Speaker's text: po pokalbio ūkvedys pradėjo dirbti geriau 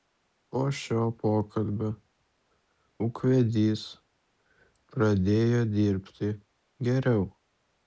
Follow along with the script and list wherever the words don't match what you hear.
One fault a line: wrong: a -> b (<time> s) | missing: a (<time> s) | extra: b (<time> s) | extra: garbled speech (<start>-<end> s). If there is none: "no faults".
extra: šio (0.8 s)